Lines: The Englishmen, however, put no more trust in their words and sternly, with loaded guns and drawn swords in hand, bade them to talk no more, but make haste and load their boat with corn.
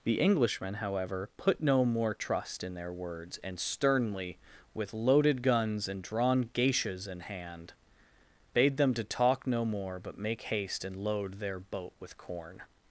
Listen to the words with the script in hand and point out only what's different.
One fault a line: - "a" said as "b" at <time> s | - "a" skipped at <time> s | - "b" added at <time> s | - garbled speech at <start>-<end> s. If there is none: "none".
- "swords" said as "geishas" at 6.5 s